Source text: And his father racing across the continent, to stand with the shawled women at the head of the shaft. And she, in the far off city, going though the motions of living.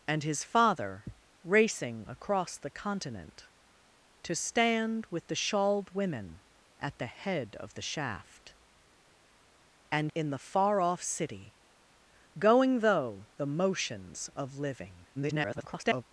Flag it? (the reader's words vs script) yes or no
yes